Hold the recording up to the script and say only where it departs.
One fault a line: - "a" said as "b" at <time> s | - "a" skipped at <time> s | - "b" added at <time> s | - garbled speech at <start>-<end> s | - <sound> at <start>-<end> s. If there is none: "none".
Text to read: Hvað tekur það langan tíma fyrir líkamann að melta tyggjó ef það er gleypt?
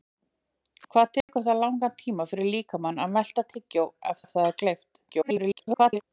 - dropout at 1.2-1.3 s
- "ef" added at 4.3 s
- garbled speech at 5.1-6.0 s